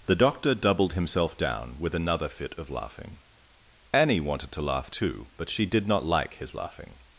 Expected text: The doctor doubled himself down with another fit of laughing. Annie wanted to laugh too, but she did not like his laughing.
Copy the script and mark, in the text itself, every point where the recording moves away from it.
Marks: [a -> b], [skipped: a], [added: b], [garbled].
The doctor doubled himself down with another fit of laughing. Annie wanted to laugh too, but she did not like his laughing.